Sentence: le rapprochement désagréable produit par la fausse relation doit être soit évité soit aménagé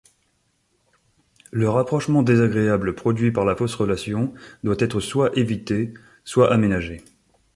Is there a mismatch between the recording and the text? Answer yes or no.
no